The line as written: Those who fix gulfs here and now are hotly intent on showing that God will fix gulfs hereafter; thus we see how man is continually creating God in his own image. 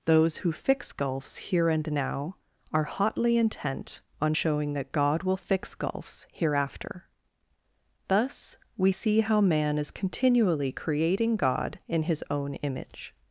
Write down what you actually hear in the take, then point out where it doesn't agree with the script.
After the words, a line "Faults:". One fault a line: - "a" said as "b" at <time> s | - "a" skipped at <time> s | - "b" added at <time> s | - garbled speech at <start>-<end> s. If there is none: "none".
Those who fix gulfs here and now are hotly intent on showing that God will fix gulfs hereafter; thus we see how man is continually creating God in his own image.
Faults:
none